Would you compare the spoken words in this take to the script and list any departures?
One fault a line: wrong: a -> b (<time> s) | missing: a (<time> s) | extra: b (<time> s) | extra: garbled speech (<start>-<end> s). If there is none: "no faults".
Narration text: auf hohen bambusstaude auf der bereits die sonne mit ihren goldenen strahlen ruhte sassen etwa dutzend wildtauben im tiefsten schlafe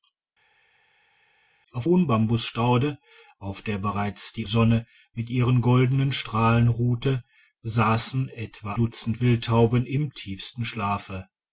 no faults